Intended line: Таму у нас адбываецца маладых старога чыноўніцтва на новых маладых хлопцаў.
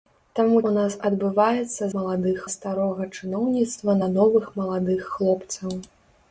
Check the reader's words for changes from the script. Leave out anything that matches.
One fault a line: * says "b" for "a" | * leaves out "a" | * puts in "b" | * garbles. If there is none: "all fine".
all fine